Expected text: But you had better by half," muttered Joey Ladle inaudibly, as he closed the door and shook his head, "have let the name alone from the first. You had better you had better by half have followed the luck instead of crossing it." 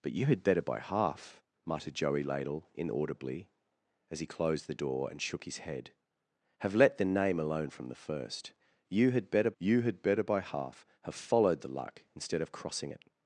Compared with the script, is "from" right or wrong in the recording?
right